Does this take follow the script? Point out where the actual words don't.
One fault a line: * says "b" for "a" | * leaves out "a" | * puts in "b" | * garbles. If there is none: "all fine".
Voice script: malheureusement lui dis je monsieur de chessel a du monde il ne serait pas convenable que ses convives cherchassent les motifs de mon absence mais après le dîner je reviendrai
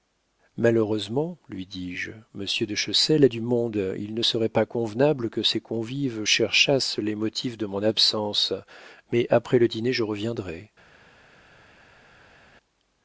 all fine